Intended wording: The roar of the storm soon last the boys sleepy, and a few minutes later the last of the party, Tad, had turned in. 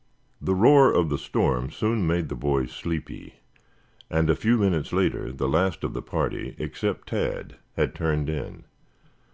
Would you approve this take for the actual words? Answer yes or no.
no